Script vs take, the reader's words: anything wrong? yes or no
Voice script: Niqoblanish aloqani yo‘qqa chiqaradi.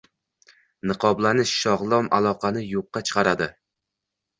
yes